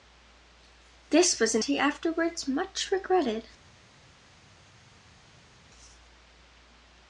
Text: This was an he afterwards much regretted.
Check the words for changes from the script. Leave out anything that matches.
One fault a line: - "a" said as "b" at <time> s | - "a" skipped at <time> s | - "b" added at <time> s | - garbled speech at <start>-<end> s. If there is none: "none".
none